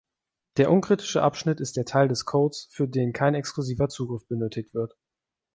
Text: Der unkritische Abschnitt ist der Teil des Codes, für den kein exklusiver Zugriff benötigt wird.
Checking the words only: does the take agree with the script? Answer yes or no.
yes